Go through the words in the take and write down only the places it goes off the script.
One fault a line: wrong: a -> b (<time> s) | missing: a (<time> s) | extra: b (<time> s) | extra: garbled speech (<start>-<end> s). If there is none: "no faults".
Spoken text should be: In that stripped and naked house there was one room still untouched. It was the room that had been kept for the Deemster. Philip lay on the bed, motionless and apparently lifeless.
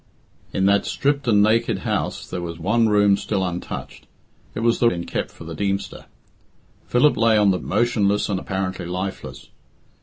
missing: room that had (4.9 s)
missing: bed (7.6 s)